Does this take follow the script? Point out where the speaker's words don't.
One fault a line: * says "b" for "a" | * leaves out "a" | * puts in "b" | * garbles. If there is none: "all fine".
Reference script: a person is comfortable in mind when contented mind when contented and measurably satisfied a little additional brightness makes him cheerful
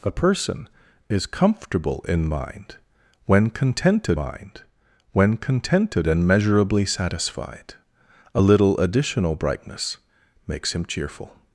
all fine